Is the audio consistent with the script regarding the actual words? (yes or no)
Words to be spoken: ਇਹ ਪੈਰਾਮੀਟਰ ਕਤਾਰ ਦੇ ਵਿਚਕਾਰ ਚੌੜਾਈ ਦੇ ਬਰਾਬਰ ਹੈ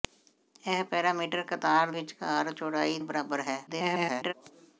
no